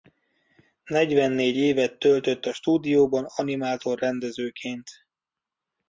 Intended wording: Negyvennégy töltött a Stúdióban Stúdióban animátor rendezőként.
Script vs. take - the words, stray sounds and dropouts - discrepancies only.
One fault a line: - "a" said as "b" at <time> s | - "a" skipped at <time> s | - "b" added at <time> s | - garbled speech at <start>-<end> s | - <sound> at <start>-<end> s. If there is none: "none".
- "évet" added at 1.5 s
- "Stúdióban" skipped at 3.2 s